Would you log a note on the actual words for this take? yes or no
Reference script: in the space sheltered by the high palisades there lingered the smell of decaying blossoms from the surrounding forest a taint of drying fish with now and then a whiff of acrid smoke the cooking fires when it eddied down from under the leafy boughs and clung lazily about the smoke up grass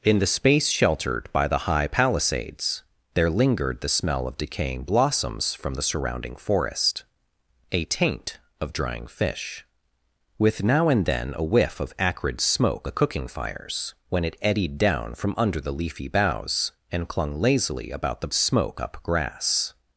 no